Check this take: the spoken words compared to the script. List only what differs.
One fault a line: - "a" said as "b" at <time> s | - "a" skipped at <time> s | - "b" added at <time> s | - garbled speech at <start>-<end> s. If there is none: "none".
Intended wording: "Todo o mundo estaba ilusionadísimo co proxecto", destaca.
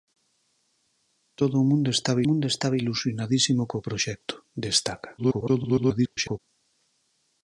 - "mundo estaba" added at 2.3 s
- garbled speech at 5.2-6.4 s